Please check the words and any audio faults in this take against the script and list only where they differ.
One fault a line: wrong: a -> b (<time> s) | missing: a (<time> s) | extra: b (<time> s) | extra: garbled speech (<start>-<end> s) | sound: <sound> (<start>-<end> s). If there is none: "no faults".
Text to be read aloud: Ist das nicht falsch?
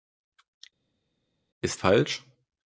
missing: das nicht (1.8 s)